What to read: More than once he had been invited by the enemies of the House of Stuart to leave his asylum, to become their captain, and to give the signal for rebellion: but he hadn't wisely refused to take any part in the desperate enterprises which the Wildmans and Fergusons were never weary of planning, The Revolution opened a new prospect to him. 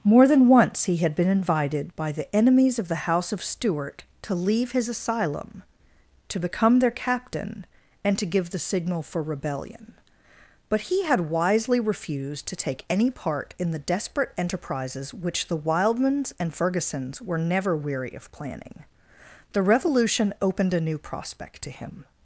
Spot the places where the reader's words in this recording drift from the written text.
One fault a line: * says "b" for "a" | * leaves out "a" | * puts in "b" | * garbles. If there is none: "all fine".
* says "had" for "hadn't"